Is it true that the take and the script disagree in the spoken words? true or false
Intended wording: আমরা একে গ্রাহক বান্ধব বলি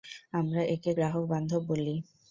false